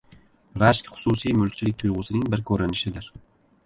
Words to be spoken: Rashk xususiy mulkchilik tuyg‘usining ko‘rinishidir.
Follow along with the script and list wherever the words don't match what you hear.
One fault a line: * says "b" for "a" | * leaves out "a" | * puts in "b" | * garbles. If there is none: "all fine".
* puts in "bir"